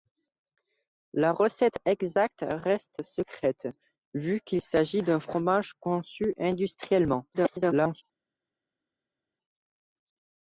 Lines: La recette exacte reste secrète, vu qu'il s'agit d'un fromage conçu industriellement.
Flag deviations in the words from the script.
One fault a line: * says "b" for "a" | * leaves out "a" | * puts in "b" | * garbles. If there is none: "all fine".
* garbles